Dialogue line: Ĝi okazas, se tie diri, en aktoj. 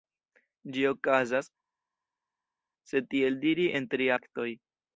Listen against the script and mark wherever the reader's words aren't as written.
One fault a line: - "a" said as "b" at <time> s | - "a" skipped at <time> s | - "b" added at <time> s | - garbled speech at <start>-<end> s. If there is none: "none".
- "tie" said as "tiel" at 3.1 s
- "tri" added at 4.0 s